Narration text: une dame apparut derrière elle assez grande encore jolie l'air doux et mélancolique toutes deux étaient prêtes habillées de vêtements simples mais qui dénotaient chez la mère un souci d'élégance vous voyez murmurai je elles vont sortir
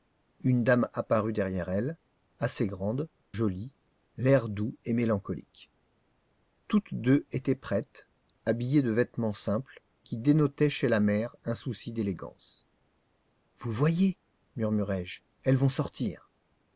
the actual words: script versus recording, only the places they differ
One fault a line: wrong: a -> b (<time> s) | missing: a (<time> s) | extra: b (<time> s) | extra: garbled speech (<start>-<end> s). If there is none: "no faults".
missing: encore (3.1 s)
missing: mais (9.8 s)